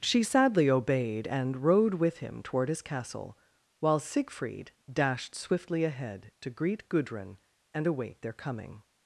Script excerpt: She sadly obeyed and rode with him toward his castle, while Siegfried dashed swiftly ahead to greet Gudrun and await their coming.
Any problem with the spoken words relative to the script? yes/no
no